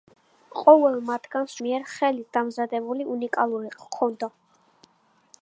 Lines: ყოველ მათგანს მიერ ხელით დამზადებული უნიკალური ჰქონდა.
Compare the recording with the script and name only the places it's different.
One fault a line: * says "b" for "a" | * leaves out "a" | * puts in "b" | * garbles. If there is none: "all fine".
all fine